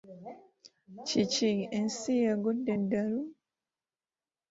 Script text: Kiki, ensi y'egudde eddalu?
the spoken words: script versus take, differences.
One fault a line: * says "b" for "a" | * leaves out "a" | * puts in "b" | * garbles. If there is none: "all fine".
all fine